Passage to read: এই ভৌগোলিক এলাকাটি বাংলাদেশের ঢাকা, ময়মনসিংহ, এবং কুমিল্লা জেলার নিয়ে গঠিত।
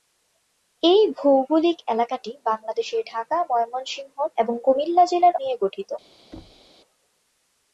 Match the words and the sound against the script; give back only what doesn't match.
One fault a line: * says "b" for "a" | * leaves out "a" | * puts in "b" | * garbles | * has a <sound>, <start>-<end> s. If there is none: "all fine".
* has a thud, 6.3-6.7 s